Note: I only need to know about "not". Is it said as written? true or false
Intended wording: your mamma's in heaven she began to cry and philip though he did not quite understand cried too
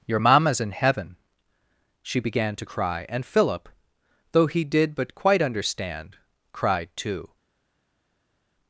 false